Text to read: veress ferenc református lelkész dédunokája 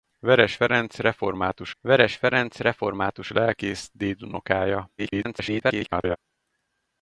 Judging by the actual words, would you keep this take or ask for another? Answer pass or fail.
fail